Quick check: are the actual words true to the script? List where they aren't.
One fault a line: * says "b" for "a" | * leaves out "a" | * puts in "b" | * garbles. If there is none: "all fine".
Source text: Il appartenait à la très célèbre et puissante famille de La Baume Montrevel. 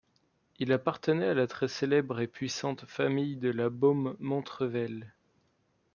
all fine